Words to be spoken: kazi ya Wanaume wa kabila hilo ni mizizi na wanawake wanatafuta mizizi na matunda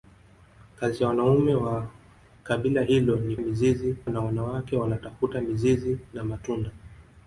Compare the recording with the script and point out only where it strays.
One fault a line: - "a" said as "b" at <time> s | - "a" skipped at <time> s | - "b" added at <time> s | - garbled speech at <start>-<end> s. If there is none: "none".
none